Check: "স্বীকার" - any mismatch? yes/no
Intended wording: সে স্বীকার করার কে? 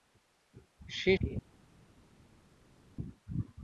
yes